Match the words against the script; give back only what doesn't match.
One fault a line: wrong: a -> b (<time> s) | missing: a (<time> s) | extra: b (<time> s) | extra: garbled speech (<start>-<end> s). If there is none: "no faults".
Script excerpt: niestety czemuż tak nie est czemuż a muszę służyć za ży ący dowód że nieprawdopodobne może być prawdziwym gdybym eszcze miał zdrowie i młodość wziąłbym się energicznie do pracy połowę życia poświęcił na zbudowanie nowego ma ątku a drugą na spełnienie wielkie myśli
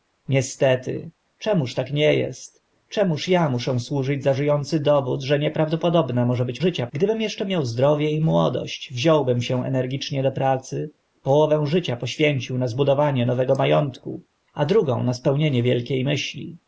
wrong: prawdziwym -> życia (6.6 s)